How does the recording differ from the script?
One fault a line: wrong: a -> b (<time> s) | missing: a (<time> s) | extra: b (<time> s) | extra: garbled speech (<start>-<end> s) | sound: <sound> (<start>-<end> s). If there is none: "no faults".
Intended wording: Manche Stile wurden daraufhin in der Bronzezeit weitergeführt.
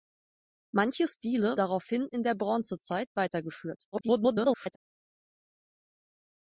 missing: wurden (1.6 s)
extra: garbled speech (3.9-4.8 s)